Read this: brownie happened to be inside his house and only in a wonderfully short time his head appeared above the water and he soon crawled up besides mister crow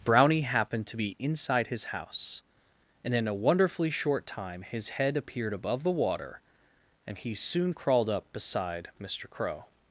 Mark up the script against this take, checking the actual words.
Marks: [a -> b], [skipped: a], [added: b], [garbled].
brownie happened to be inside his house and [skipped: only] in a wonderfully short time his head appeared above the water and he soon crawled up [besides -> beside] mister crow